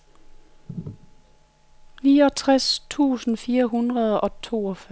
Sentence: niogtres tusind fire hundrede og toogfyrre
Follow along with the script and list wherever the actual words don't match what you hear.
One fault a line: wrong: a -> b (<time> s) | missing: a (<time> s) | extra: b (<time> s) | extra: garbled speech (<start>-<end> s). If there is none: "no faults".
no faults